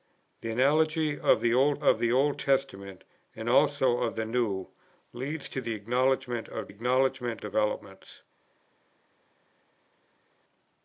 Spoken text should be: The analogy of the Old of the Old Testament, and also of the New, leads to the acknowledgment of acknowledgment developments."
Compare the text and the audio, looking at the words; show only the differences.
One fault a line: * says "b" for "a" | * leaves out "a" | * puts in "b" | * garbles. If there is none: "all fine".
all fine